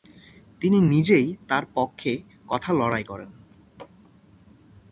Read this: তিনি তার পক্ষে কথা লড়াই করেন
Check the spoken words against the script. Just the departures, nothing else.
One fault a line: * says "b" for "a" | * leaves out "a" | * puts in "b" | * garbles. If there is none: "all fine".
* puts in "নিজেই"